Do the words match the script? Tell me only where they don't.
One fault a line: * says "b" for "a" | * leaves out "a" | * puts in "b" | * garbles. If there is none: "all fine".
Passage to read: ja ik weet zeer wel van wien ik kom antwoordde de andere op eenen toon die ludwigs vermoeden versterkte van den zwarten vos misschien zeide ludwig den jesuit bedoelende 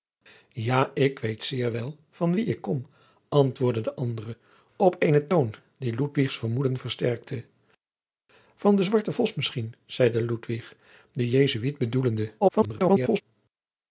* garbles